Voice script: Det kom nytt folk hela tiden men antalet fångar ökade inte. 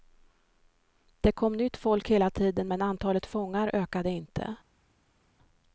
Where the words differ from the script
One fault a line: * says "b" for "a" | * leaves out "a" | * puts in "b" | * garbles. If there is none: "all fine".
all fine